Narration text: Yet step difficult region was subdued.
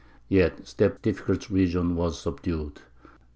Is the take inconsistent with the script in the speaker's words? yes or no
no